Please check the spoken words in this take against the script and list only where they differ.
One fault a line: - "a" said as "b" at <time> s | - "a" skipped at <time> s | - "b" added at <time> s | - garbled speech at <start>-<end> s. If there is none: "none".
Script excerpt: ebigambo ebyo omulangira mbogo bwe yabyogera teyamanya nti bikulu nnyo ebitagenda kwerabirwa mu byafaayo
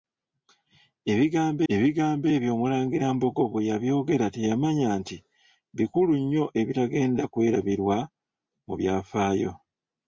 - "ebigambo" added at 1.7 s